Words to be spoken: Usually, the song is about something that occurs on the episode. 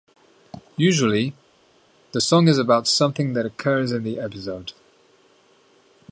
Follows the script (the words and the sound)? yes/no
no